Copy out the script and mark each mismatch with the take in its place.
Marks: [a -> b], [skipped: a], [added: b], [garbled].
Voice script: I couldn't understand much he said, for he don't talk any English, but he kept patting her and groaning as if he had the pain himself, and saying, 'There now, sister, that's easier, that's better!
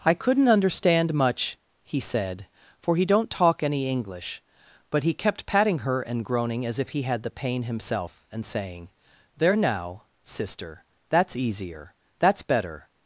I couldn't understand much he said, for he don't talk any English, but he kept patting her and groaning as if he had the pain himself, and saying, 'There now, sister, that's easier, that's better!